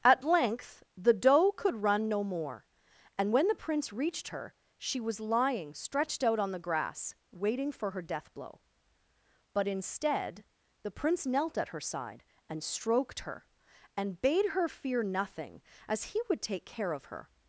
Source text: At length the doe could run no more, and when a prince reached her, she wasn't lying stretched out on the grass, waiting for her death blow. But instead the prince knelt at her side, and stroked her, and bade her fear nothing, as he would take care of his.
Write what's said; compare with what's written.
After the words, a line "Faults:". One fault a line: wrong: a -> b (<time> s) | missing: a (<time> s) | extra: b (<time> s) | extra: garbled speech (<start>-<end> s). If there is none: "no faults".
At length the doe could run no more, and when the prince reached her, she was lying stretched out on the grass, waiting for her death blow. But instead the prince knelt at her side, and stroked her, and bade her fear nothing, as he would take care of her.
Faults:
wrong: a -> the (3.5 s)
wrong: wasn't -> was (5.0 s)
wrong: his -> her (17.1 s)